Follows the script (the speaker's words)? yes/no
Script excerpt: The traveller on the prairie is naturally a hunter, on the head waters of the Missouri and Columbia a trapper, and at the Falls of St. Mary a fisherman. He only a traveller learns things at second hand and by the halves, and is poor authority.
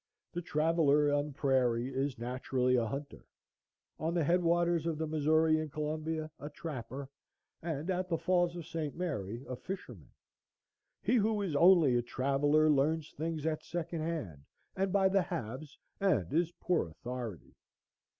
no